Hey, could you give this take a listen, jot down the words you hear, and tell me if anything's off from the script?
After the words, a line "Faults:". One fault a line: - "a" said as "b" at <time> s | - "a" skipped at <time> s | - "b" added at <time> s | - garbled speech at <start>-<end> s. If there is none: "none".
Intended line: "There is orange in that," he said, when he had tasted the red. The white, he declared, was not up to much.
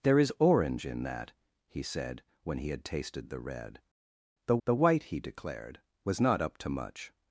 "There is orange in that," he said, when he had tasted the red. The the white, he declared, was not up to much.
Faults:
- "the" added at 4.7 s